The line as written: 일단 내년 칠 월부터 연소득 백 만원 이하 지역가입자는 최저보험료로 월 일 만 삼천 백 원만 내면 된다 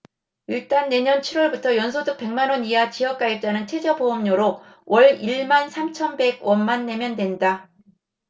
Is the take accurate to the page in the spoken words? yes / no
yes